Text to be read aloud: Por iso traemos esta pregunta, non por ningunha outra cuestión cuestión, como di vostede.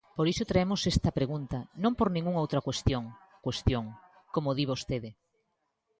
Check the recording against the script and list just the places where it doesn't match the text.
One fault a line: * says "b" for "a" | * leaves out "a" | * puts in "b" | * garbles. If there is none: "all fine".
all fine